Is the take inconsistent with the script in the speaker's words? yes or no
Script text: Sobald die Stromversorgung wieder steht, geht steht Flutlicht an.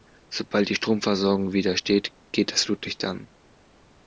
yes